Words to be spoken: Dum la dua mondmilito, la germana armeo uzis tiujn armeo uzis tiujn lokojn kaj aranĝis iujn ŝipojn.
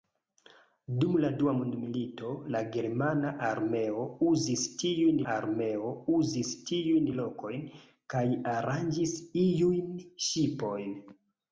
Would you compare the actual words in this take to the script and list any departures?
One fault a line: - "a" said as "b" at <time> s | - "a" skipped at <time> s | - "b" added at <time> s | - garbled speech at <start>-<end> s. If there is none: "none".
none